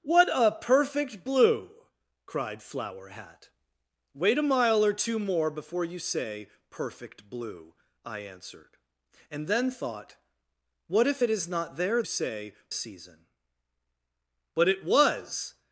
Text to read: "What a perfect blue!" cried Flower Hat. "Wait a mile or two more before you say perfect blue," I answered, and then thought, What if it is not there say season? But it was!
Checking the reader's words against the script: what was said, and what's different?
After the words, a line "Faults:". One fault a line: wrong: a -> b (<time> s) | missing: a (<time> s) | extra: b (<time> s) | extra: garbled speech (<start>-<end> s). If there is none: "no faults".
"What a perfect blue!" cried Flower Hat. "Wait a mile or two more before you say perfect blue," I answered, and then thought, What if it is not there say season? But it was!
Faults:
no faults